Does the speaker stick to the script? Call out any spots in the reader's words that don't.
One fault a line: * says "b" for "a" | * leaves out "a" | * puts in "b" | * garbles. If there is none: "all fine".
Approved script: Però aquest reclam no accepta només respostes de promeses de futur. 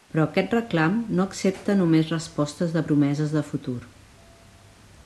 all fine